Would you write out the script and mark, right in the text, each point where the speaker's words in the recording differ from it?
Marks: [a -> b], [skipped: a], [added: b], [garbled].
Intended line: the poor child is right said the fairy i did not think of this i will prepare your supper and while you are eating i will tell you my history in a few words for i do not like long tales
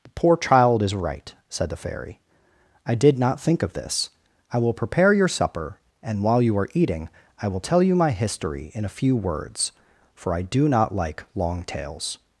the poor child is right said the fairy i did not think of this i will prepare your supper and while you are eating i will tell you my history in a few words for i do not like long tales